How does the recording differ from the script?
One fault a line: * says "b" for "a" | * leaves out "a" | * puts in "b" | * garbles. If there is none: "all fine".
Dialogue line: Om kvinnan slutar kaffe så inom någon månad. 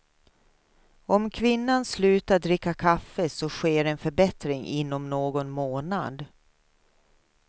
* puts in "dricka"
* puts in "sker en förbättring"